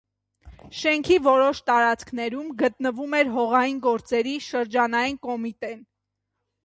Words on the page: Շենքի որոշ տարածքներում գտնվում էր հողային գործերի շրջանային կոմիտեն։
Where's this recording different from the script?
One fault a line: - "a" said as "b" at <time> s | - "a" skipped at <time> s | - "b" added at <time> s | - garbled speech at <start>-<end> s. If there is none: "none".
none